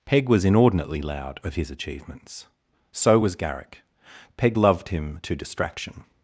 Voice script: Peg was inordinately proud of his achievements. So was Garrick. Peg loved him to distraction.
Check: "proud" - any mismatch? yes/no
yes